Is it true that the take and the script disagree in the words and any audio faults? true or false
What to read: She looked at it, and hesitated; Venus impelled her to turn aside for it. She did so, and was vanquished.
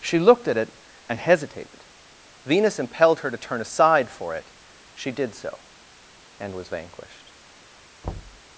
true